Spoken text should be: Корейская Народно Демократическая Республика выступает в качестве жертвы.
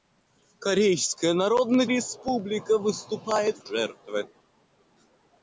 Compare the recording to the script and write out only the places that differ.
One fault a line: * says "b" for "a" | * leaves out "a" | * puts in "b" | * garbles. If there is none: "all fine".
* leaves out "Демократическая"
* leaves out "качестве"